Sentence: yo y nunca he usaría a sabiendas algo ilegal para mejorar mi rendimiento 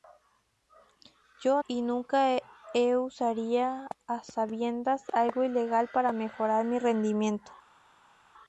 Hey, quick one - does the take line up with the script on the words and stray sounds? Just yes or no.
yes